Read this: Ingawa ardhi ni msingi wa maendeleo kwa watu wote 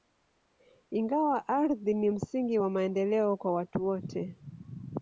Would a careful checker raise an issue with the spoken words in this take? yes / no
no